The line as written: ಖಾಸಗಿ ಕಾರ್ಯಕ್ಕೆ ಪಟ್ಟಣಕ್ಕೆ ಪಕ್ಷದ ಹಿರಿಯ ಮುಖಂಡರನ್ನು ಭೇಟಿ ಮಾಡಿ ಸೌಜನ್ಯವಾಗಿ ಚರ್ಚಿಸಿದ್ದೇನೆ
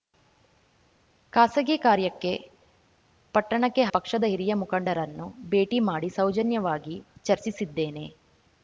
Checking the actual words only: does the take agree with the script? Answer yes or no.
yes